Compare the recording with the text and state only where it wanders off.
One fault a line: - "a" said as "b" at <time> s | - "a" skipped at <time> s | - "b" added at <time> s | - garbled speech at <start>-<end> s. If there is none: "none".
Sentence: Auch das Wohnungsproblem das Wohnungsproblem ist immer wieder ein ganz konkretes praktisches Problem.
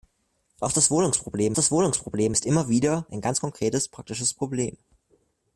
none